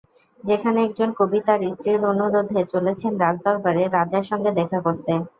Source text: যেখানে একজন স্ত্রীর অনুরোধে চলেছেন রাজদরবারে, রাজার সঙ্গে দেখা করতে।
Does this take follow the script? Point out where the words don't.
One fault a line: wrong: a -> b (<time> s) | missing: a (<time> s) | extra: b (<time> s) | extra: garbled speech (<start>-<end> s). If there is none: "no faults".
extra: কবি তাঁর (1.2 s)